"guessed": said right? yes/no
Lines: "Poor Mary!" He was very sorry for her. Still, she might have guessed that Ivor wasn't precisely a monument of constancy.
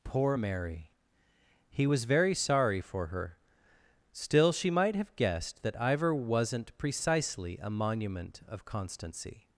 yes